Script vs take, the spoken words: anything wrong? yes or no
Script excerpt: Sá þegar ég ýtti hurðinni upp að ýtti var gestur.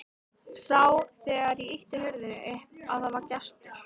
yes